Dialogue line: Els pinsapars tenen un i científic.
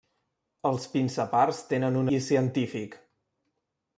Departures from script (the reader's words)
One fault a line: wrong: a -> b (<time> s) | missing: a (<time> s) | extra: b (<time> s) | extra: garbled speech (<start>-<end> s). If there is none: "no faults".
no faults